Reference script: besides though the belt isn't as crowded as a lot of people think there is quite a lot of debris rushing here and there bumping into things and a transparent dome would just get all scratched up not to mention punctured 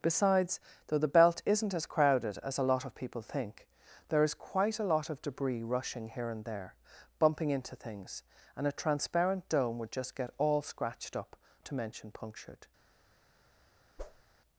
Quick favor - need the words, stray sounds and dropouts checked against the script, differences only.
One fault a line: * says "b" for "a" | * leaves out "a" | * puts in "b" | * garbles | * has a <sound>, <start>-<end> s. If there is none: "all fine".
* leaves out "not"
* has a whoosh, 14.0-14.2 s